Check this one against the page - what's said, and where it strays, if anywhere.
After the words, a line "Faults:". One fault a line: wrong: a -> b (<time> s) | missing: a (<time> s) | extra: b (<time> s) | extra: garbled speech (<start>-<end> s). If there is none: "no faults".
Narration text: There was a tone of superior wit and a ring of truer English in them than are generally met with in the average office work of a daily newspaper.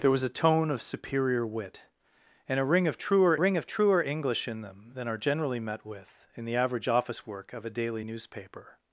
There was a tone of superior wit and a ring of truer ring of truer English in them than are generally met with in the average office work of a daily newspaper.
Faults:
extra: ring of truer (3.4 s)